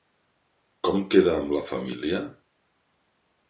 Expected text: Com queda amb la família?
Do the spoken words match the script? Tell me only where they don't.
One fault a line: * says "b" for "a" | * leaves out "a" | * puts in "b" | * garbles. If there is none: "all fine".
all fine